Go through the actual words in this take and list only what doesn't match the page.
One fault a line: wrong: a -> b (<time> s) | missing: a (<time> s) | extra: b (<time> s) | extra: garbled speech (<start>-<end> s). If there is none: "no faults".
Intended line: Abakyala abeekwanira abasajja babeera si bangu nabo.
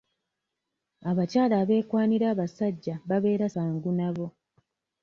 missing: si (3.5 s)